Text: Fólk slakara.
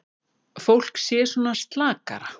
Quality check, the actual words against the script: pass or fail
fail